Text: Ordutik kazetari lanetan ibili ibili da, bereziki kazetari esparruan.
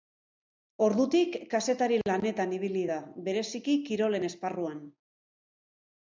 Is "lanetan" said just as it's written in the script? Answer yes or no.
yes